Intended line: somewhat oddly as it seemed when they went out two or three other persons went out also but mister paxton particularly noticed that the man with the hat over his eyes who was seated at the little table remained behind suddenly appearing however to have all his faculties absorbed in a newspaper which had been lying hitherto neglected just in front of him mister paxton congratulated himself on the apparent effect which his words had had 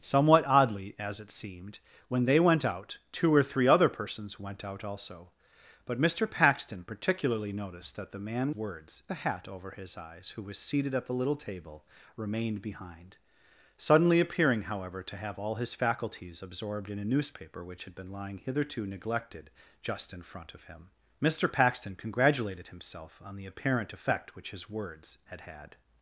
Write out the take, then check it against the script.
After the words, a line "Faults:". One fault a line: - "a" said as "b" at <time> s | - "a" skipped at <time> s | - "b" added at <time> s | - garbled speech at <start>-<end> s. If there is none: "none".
somewhat oddly as it seemed when they went out two or three other persons went out also but mister paxton particularly noticed that the man words the hat over his eyes who was seated at the little table remained behind suddenly appearing however to have all his faculties absorbed in a newspaper which had been lying hitherto neglected just in front of him mister paxton congratulated himself on the apparent effect which his words had had
Faults:
- "with" said as "words" at 8.5 s